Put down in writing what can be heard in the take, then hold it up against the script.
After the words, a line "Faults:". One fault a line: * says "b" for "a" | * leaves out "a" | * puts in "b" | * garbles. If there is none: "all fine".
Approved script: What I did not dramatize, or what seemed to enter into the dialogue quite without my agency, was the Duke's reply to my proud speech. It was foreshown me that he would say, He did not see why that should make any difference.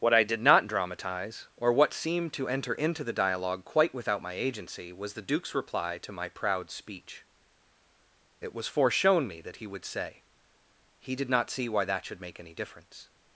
What I did not dramatize, or what seemed to enter into the dialogue quite without my agency, was the Duke's reply to my proud speech. It was foreshown me that he would say, He did not see why that should make any difference.
Faults:
all fine